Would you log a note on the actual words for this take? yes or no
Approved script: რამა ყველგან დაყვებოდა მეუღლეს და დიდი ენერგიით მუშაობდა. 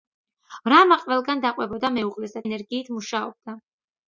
yes